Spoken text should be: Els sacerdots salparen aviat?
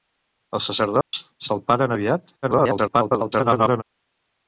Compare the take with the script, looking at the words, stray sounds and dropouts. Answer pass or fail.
fail